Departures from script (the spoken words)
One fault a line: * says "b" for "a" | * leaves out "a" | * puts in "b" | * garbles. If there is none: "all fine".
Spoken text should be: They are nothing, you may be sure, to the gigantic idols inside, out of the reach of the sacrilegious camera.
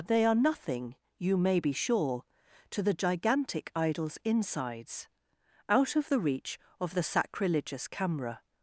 * says "insides" for "inside"